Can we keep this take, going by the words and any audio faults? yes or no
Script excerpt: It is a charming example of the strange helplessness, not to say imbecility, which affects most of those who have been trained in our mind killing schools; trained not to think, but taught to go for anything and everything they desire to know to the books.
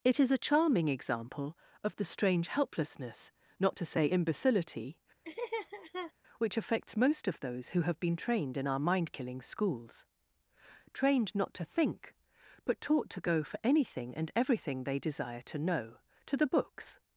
no